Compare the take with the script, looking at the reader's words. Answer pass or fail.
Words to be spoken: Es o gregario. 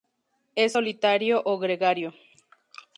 fail